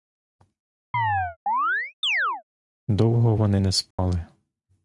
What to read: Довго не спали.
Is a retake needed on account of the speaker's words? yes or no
yes